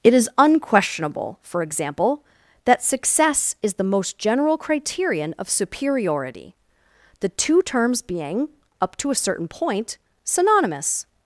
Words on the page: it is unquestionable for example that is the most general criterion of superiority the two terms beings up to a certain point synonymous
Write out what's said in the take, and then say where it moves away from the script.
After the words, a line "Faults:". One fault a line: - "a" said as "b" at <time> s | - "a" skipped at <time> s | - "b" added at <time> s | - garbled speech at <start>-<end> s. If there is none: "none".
it is unquestionable for example that success is the most general criterion of superiority the two terms being up to a certain point synonymous
Faults:
- "success" added at 2.8 s
- "beings" said as "being" at 8.0 s